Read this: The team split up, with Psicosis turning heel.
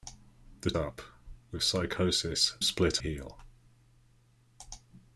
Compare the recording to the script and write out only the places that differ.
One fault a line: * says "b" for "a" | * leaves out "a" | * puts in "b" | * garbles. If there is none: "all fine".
* leaves out "team split"
* says "split" for "turning"